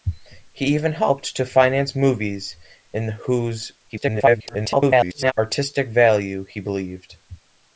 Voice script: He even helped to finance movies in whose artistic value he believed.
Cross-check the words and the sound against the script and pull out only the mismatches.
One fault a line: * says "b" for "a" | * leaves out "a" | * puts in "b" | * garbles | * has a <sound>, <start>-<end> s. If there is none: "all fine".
* garbles